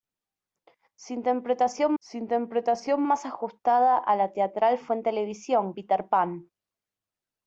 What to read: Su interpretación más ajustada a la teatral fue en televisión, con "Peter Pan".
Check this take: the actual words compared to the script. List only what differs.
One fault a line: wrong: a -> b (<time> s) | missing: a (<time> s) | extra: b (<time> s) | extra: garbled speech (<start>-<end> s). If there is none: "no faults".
extra: su interpretación (2.0 s)
missing: con (5.7 s)